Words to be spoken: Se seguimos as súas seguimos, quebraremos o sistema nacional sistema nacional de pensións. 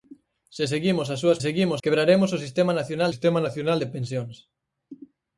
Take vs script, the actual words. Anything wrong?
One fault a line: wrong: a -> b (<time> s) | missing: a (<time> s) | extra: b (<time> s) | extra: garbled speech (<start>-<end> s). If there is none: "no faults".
no faults